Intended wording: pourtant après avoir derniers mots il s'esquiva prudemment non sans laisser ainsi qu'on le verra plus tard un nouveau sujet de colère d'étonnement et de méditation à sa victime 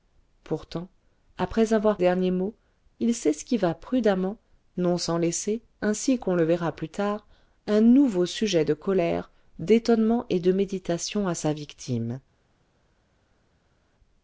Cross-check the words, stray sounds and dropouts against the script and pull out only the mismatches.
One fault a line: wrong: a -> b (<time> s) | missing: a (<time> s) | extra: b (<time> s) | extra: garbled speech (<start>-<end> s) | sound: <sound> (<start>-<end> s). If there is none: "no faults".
no faults